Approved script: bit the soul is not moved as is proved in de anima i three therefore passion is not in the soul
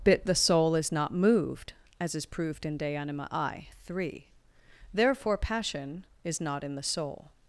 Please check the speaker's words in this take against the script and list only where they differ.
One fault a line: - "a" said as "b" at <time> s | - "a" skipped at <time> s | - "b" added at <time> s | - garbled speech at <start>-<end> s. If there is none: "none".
none